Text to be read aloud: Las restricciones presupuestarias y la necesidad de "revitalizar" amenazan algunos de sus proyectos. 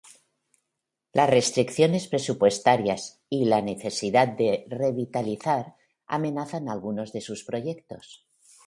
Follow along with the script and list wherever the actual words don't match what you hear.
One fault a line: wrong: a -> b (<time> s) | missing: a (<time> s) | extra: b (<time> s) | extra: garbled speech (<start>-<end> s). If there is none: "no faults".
no faults